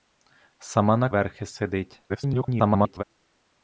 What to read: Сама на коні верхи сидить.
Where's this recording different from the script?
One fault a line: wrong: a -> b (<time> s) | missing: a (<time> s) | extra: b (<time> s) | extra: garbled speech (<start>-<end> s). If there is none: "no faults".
missing: коні (1.1 s)
extra: garbled speech (2.1-3.0 s)